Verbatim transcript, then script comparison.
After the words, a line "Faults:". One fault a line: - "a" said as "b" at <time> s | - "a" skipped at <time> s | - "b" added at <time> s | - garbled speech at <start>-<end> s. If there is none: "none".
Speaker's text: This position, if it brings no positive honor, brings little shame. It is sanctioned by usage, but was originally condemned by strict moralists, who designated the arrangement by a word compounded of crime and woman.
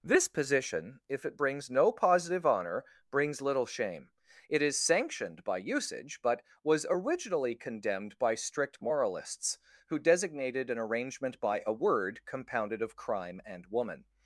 This position, if it brings no positive honor, brings little shame. It is sanctioned by usage, but was originally condemned by strict moralists, who designated an arrangement by a word compounded of crime and woman.
Faults:
- "the" said as "an" at 10.7 s